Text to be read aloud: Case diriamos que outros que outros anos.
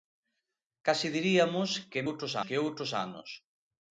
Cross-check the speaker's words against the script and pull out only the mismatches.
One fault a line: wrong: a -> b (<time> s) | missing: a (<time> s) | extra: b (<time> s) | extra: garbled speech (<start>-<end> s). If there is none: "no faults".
no faults